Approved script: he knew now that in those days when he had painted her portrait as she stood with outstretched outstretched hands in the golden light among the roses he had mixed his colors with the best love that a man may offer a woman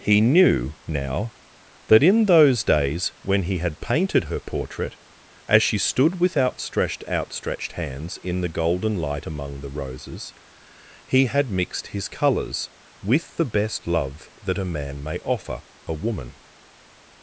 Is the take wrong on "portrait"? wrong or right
right